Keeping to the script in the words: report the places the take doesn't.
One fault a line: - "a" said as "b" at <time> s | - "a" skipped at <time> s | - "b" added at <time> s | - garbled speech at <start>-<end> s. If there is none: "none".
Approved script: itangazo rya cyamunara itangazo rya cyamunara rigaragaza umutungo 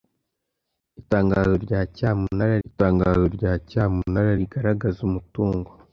none